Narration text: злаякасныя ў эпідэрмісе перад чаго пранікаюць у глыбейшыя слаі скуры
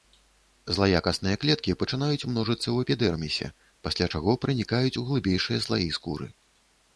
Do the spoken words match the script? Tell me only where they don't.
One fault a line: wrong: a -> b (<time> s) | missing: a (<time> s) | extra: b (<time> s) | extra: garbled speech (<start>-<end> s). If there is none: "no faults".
extra: клеткі пачынаюць множыцца (1.4 s)
wrong: перад -> пасля (3.9 s)